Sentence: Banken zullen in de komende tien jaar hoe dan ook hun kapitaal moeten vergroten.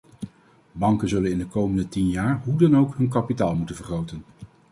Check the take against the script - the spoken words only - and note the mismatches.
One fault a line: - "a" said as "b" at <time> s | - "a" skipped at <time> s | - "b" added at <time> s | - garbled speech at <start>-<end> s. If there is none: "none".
none